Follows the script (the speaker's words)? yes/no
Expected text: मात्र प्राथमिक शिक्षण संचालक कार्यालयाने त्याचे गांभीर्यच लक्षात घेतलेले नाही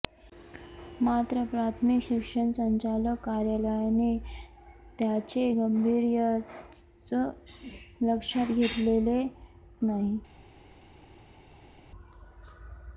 yes